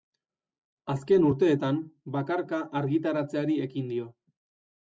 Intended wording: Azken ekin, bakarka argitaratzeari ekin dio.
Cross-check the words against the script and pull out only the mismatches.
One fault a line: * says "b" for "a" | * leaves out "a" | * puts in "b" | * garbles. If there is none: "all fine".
* says "urteetan" for "ekin"